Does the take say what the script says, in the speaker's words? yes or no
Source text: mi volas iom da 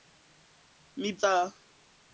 no